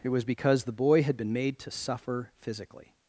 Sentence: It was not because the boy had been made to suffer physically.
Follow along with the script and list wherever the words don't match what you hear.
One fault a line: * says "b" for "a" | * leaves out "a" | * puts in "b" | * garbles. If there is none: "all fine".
* leaves out "not"